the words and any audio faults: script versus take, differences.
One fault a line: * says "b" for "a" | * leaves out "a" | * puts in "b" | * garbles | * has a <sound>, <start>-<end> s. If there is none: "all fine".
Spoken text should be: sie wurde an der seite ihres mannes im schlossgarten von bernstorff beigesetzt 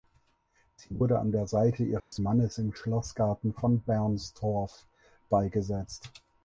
* has a dropout, 2.0-2.1 s